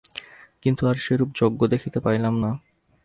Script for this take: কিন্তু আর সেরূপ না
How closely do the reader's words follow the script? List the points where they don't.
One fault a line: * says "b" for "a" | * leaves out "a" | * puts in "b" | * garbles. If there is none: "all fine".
* puts in "যজ্ঞ দেখিতে পাইলাম"